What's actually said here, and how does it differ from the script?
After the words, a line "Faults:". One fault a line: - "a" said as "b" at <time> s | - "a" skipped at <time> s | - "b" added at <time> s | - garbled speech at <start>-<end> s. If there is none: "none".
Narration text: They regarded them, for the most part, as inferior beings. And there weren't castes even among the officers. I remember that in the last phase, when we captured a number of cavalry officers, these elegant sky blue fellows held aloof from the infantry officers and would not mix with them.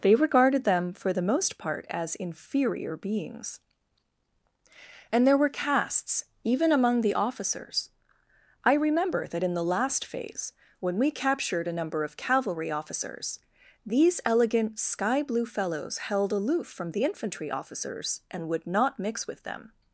They regarded them, for the most part, as inferior beings. And there were castes even among the officers. I remember that in the last phase, when we captured a number of cavalry officers, these elegant sky blue fellows held aloof from the infantry officers and would not mix with them.
Faults:
- "weren't" said as "were" at 5.4 s